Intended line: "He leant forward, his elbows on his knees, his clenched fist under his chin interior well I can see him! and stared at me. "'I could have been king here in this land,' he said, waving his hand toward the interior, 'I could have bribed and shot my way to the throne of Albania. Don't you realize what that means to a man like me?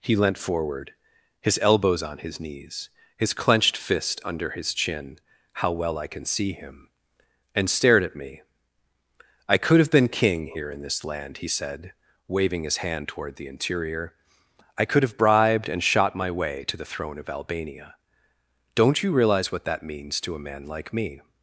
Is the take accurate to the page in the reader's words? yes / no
no